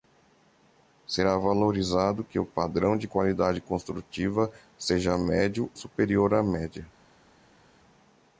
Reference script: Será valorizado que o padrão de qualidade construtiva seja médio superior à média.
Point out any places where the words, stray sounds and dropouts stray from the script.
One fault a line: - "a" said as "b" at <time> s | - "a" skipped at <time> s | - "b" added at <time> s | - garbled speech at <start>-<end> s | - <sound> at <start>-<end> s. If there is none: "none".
none